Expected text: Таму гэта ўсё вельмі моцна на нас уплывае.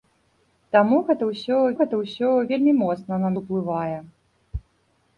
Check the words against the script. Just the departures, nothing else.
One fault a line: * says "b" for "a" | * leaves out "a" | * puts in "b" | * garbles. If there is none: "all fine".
* puts in "гэта ўсё"
* leaves out "нас"